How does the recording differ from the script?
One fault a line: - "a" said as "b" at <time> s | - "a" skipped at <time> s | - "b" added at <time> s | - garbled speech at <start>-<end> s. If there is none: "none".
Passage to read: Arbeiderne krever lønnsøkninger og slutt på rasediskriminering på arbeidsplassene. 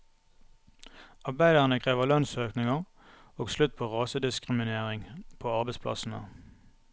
none